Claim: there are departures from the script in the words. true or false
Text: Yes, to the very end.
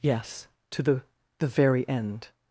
true